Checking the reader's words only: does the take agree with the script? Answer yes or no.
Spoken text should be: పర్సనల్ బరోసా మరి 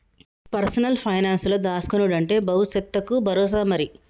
no